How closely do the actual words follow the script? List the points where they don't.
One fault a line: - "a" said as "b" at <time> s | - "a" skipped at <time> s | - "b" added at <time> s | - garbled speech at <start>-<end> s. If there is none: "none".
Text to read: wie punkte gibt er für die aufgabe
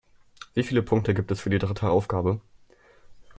- "viele" added at 0.6 s
- "er" said as "es" at 1.3 s
- "dritte" added at 1.6 s